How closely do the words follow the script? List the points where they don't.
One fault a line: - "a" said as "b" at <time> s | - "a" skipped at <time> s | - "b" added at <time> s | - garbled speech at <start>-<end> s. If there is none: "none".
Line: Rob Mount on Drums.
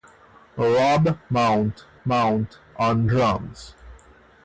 - "Mount" added at 2.0 s